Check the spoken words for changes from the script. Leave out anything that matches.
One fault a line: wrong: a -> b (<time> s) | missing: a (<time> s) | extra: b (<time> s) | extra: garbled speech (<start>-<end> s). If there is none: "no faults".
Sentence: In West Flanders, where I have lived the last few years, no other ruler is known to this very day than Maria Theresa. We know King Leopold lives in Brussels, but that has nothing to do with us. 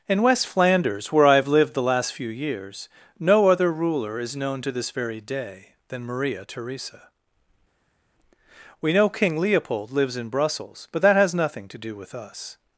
no faults